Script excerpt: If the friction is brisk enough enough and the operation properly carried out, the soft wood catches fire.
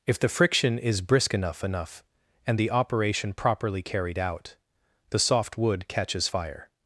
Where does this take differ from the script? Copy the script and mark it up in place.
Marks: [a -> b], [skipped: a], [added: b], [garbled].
If the friction is brisk enough enough and the operation properly carried out, the soft wood catches fire.